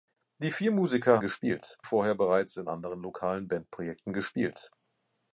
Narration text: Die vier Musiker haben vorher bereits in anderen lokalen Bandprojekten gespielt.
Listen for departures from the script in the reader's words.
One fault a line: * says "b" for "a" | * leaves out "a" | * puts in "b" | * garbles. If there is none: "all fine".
* says "gespielt" for "haben"